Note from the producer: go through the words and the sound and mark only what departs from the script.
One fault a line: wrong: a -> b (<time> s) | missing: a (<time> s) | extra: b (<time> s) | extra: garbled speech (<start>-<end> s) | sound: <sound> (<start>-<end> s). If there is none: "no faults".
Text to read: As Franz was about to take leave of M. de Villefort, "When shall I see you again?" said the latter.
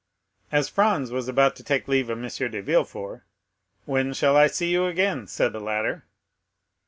no faults